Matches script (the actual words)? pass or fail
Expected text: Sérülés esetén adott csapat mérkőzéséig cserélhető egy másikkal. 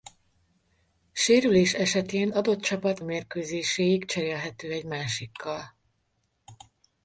pass